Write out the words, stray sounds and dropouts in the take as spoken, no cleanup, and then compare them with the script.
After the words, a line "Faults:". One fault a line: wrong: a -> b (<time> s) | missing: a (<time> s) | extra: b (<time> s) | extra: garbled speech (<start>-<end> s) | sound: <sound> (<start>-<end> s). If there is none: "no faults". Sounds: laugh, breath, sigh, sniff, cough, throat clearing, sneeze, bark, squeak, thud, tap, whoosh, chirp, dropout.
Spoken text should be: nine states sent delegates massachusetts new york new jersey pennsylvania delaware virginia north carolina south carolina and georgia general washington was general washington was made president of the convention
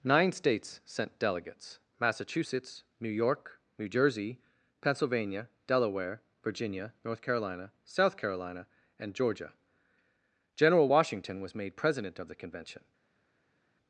nine states sent delegates massachusetts new york new jersey pennsylvania delaware virginia north carolina south carolina and georgia general washington was made president of the convention
Faults:
missing: general washington was (11.5 s)